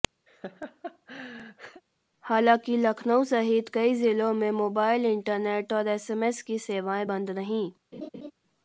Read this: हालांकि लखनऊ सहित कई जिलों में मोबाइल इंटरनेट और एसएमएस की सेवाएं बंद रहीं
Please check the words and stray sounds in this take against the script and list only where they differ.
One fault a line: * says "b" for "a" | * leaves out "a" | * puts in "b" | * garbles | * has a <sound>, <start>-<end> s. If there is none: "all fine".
* has a laugh, 0.3-1.8 s
* has a laugh, 7.9-8.3 s